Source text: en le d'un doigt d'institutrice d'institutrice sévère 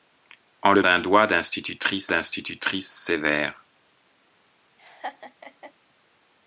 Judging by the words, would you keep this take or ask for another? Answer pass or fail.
pass